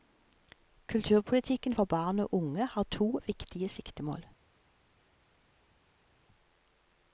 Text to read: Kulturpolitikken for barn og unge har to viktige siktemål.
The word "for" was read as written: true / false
true